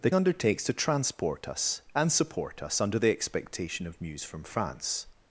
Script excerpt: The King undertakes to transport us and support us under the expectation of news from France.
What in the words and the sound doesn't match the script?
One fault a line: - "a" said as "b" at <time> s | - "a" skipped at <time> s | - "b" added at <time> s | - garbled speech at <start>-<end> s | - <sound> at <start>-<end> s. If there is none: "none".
- "King" skipped at 0.1 s